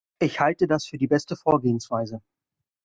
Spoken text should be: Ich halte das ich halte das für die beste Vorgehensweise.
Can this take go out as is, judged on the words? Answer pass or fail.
fail